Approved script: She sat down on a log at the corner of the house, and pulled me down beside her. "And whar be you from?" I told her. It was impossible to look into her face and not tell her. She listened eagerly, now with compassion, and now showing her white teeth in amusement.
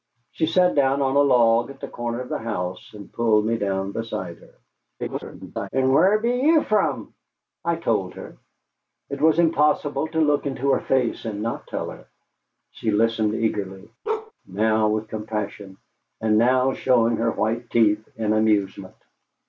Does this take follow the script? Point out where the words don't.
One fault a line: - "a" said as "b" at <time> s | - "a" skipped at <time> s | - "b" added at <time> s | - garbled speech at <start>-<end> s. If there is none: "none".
- garbled speech at 5.0-5.7 s